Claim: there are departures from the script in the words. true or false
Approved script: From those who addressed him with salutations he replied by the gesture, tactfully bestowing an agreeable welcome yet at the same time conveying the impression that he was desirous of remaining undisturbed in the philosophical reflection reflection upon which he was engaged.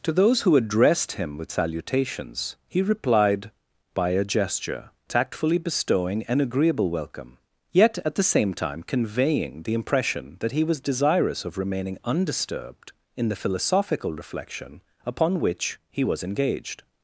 true